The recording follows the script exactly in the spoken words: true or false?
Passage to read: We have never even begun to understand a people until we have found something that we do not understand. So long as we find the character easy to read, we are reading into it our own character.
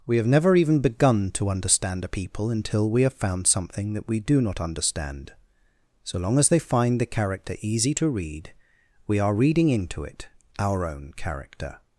false